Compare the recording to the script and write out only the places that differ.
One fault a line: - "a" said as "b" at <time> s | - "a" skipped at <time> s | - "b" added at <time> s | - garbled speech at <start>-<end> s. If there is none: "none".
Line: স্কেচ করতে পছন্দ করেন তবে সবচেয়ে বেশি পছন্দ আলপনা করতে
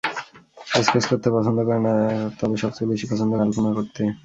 none